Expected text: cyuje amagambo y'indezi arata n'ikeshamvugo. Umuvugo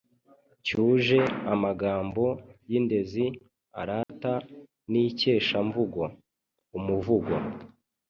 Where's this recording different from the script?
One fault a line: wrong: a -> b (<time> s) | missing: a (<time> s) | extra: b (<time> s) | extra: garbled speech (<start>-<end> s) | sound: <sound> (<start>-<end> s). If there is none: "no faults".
sound: dropout (4.0-4.1 s)